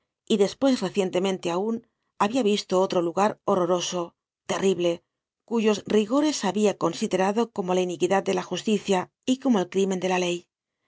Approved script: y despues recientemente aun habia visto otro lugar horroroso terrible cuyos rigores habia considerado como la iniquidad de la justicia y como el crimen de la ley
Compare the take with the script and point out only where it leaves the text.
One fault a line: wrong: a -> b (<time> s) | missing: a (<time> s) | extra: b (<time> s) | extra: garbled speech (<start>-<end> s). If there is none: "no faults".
no faults